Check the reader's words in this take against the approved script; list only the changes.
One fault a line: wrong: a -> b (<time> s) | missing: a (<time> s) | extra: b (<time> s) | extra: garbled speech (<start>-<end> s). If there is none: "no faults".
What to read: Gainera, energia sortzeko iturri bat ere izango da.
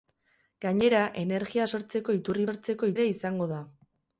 wrong: bat -> sortzeko (2.5 s)